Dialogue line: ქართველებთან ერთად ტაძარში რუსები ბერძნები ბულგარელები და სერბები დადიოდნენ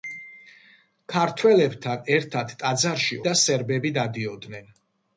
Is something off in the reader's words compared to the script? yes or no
yes